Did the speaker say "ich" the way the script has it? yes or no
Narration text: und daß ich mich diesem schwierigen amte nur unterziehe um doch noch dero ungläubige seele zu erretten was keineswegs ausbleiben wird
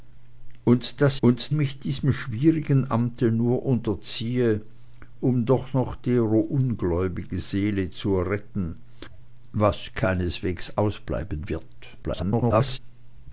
no